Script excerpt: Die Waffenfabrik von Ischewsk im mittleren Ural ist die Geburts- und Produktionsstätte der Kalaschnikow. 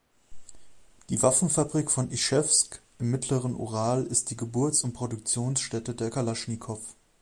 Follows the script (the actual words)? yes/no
yes